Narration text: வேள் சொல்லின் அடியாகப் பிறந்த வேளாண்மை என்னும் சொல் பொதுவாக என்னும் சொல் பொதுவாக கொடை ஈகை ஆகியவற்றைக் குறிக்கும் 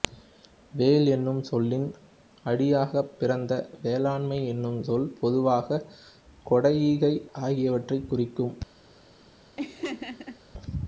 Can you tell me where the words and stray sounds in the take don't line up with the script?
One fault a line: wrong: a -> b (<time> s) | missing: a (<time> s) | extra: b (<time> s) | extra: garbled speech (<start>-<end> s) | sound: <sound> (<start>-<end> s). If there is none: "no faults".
extra: என்னும் (1.1 s)
missing: என்னும் சொல் பொதுவாக (5.8 s)
sound: laugh (9.6-10.4 s)